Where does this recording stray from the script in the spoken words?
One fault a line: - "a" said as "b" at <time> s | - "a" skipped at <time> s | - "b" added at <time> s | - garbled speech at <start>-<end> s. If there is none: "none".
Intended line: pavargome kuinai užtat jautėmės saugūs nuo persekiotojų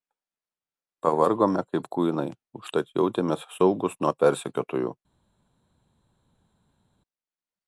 - "kaip" added at 1.7 s